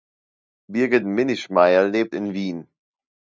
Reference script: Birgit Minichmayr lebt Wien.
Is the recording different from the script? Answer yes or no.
yes